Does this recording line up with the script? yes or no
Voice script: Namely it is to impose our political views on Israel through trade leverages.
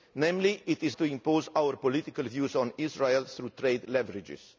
yes